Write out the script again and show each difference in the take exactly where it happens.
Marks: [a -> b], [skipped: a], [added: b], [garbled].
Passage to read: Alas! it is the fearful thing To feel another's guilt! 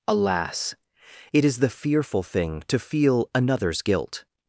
Alas! it is the fearful thing To feel another's guilt!